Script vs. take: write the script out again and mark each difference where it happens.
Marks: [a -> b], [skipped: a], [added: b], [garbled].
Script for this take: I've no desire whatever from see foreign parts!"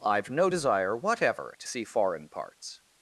I've no desire whatever [from -> to] see foreign parts!"